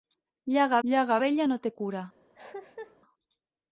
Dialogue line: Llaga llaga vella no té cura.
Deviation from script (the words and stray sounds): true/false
true